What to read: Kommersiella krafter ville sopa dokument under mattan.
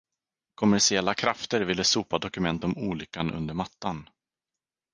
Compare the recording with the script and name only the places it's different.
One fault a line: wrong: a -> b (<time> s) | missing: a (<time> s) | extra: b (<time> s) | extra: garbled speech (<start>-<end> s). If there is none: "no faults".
extra: om olyckan (2.6 s)